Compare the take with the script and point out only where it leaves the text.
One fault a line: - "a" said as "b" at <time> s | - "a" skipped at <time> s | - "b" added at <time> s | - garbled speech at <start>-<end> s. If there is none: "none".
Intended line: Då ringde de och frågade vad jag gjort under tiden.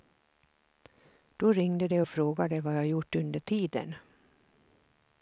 none